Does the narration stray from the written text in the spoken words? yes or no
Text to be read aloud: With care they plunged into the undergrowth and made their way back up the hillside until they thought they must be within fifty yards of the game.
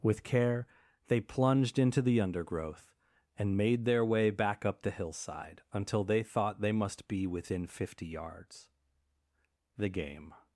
yes